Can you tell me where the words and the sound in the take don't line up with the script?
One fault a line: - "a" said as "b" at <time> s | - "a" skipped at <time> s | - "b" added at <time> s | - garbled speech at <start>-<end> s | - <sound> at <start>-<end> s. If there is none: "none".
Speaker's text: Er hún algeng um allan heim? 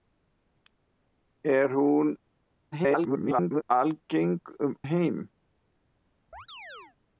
- garbled speech at 2.7-3.6 s
- "allan" skipped at 4.8 s
- chirp at 6.3-7.0 s